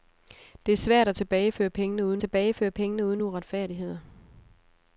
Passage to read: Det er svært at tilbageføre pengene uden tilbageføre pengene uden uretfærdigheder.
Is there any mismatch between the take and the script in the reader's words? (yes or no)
no